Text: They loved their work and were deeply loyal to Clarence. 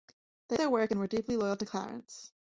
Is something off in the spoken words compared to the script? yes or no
yes